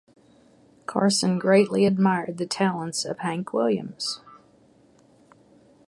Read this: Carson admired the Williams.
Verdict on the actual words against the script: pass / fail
fail